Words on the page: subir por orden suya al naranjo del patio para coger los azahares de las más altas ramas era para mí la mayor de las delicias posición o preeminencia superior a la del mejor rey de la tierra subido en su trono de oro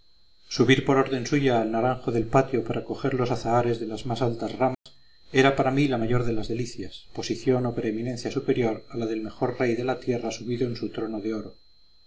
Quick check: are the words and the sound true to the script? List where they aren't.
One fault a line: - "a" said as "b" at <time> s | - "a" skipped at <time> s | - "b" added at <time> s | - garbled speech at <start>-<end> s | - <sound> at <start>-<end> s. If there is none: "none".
- dropout at 4.7-4.9 s